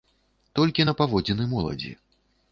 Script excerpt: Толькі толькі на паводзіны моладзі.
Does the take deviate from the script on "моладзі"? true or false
false